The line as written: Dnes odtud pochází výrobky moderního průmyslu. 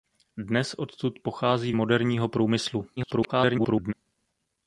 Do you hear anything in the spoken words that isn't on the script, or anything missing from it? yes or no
yes